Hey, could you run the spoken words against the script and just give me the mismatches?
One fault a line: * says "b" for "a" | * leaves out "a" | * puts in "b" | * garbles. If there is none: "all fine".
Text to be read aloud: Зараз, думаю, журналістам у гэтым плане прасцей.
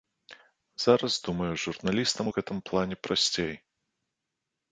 all fine